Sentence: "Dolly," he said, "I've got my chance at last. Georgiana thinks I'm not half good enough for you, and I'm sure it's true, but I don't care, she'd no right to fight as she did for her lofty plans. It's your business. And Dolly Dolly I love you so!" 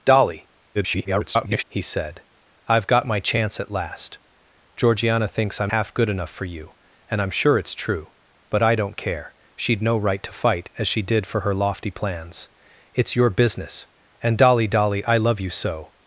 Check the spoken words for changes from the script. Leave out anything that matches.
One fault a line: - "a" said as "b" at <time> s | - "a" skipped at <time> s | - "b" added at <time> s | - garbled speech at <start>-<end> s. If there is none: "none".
- garbled speech at 0.7-1.6 s
- "not" skipped at 5.7 s